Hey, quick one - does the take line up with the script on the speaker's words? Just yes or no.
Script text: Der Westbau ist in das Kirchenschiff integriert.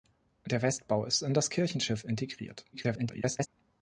no